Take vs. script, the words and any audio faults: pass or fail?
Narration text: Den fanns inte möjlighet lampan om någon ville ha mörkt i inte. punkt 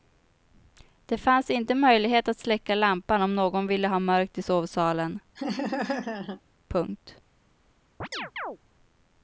fail